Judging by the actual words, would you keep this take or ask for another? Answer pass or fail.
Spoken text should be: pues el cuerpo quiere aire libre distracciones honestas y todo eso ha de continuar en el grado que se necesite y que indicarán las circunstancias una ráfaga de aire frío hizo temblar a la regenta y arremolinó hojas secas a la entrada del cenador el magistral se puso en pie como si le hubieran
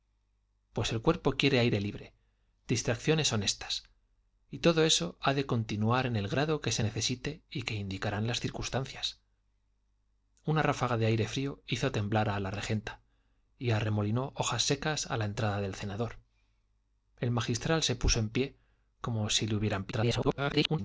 fail